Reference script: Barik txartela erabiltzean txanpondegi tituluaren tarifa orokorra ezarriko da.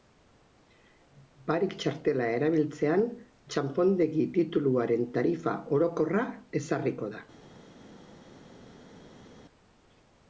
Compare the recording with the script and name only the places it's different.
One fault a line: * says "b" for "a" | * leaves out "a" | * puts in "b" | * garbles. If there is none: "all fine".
all fine